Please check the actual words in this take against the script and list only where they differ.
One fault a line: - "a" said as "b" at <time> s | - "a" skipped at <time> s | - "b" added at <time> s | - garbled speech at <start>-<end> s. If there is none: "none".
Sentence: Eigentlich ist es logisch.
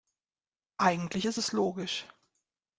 none